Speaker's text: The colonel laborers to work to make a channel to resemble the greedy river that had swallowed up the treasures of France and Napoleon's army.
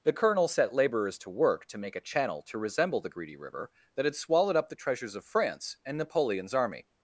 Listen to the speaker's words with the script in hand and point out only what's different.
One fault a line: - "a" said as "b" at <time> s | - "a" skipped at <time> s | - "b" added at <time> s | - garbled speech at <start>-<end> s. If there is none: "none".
- "set" added at 0.5 s